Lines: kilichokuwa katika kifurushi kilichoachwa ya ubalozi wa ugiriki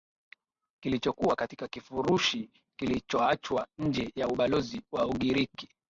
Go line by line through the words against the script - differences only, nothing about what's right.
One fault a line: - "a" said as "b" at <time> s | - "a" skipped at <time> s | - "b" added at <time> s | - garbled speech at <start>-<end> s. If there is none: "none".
- "nje" added at 3.8 s